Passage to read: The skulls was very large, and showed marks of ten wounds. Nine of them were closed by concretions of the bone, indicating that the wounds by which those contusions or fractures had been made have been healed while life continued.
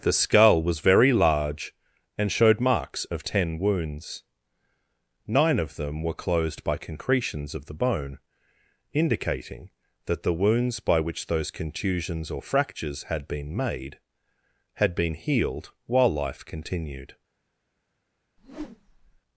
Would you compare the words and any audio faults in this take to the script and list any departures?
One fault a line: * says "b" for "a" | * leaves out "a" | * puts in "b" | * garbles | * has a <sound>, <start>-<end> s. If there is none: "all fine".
* says "skull" for "skulls"
* says "had" for "have"
* has a whoosh, 18.4-19.2 s